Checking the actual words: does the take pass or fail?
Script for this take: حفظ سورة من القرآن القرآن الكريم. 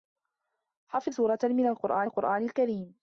pass